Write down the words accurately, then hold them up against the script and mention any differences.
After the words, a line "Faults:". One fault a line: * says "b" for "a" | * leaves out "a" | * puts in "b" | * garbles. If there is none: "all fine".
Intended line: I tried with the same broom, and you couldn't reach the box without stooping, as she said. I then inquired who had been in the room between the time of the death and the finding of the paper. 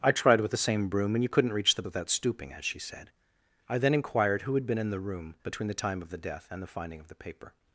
I tried with the same broom, and you couldn't reach the without stooping, as she said. I then inquired who had been in the room between the time of the death and the finding of the paper.
Faults:
* leaves out "box"